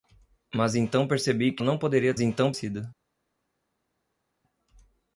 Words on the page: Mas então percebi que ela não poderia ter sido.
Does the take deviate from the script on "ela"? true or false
true